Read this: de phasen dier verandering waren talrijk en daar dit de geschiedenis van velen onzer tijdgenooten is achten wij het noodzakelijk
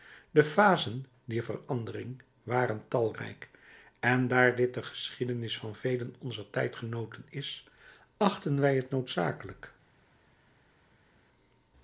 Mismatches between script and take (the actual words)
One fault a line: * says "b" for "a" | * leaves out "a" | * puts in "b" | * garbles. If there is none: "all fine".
all fine